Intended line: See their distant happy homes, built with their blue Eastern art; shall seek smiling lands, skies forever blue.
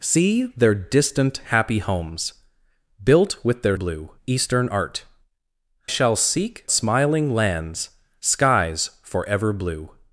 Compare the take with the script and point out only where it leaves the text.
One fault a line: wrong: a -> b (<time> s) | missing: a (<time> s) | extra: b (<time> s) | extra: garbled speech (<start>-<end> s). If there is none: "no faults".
no faults